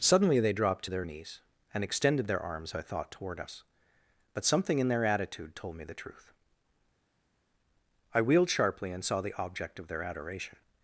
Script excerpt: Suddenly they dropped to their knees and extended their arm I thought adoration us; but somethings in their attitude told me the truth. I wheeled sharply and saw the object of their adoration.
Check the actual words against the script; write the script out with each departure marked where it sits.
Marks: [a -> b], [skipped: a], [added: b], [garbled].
Suddenly they dropped to their knees and extended their [arm -> arms] I thought [adoration -> toward] us; but [somethings -> something] in their attitude told me the truth. I wheeled sharply and saw the object of their adoration.